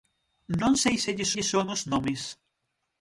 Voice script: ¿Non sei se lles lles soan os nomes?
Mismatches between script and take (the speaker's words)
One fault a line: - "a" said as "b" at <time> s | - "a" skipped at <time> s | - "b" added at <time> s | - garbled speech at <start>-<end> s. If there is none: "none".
none